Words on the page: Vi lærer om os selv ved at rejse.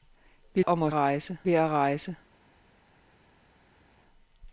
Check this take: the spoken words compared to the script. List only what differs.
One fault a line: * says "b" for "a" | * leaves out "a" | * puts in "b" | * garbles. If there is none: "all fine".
* leaves out "lærer"
* says "rejse" for "selv"